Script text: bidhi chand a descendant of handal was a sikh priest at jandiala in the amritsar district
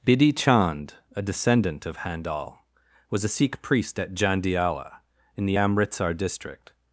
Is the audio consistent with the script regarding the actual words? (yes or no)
yes